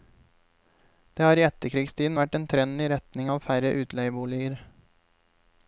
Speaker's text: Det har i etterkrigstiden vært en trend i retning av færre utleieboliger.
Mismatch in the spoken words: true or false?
false